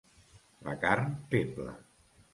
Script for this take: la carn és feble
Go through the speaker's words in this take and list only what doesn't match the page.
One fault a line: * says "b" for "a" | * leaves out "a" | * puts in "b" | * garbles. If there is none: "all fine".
* leaves out "és"